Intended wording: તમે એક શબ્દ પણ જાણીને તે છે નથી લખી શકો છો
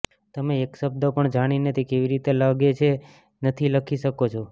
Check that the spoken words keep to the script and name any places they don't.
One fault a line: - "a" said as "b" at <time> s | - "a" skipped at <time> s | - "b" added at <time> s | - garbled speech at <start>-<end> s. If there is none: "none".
- "કેવી રીતે લાગે" added at 1.9 s